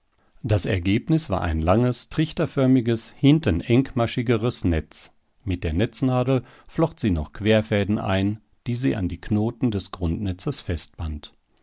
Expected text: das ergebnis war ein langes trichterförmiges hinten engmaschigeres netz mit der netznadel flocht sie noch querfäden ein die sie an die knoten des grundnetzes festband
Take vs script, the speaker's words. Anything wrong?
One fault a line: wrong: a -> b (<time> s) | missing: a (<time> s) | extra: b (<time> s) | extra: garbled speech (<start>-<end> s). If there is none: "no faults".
no faults